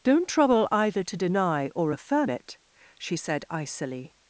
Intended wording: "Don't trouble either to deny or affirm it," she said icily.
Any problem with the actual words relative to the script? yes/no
no